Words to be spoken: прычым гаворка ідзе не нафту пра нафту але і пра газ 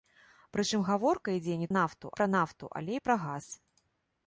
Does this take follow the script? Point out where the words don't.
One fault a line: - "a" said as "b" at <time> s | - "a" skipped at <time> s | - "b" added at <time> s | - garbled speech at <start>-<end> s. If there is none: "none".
none